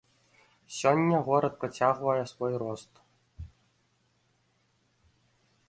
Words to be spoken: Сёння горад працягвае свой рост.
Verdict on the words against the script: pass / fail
pass